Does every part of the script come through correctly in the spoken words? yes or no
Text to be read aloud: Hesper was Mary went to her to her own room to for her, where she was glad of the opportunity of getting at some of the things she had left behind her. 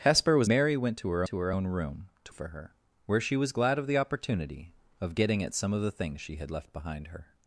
yes